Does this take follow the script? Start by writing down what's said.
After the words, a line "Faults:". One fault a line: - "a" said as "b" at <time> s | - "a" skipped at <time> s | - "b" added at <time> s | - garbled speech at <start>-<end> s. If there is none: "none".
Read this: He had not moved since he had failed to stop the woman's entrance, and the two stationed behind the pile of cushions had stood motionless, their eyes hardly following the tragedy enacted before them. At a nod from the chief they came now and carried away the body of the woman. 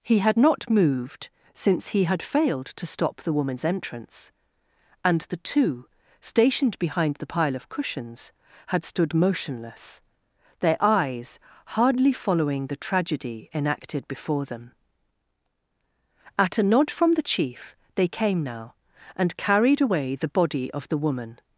He had not moved since he had failed to stop the woman's entrance, and the two stationed behind the pile of cushions had stood motionless, their eyes hardly following the tragedy enacted before them. At a nod from the chief they came now and carried away the body of the woman.
Faults:
none